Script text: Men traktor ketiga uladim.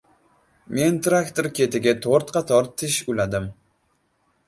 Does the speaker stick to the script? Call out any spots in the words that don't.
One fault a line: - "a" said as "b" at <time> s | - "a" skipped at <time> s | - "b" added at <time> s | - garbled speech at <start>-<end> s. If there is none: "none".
- "to‘rt qator tish" added at 2.1 s